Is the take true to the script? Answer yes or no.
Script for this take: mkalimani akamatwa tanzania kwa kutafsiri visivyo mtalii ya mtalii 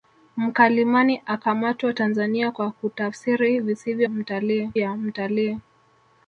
yes